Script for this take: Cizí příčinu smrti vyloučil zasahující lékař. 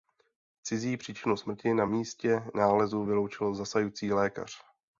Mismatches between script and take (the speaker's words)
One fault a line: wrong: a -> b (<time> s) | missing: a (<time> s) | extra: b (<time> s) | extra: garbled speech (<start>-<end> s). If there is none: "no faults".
extra: na místě nálezu (1.7 s)